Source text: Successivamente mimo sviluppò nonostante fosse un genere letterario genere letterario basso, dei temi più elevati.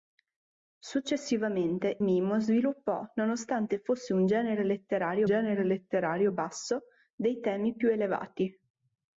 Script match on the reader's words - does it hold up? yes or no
yes